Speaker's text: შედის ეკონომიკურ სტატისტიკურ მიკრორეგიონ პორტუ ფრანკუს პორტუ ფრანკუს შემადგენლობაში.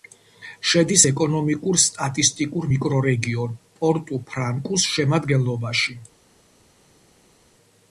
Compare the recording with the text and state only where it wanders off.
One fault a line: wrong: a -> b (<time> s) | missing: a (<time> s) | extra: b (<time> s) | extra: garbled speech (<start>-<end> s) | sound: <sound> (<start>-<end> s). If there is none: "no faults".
missing: პორტუ ფრანკუს (4.9 s)